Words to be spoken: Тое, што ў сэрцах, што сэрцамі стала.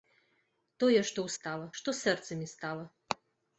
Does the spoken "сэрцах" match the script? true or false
false